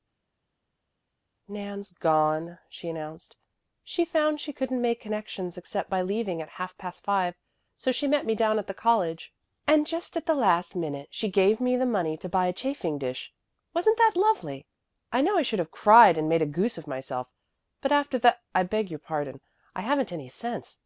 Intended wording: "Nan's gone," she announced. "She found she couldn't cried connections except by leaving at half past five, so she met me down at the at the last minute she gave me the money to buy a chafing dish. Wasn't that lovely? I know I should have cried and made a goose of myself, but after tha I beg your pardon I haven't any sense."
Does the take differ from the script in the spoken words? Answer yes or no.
yes